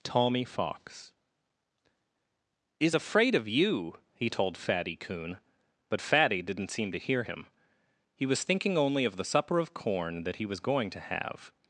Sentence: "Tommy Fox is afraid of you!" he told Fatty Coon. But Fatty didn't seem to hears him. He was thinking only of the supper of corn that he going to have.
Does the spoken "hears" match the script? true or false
false